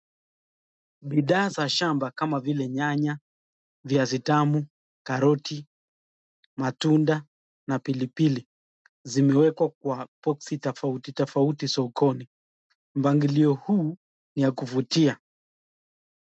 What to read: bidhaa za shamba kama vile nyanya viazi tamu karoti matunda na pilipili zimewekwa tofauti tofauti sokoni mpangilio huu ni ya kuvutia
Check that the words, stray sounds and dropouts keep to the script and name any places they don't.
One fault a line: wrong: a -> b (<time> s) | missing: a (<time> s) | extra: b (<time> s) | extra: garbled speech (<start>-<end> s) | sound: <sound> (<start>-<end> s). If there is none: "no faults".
extra: kwa boksi (9.7 s)